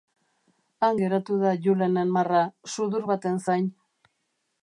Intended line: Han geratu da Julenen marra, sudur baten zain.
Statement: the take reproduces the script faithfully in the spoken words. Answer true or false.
true